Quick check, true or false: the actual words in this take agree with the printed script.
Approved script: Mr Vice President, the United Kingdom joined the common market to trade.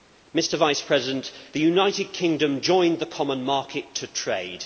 true